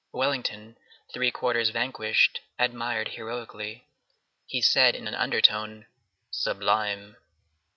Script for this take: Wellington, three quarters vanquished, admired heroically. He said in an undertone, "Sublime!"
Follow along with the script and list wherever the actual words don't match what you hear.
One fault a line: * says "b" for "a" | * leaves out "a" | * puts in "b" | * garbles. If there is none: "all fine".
all fine